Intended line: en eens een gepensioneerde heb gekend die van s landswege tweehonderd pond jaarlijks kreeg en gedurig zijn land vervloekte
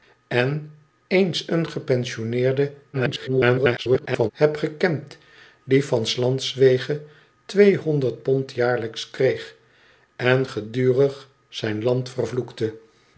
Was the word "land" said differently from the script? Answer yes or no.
no